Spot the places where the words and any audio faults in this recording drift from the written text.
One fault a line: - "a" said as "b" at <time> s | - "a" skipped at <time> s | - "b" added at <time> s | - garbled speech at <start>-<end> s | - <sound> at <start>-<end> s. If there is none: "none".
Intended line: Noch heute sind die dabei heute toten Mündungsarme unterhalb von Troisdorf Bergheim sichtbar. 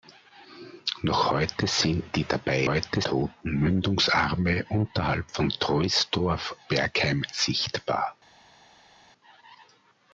none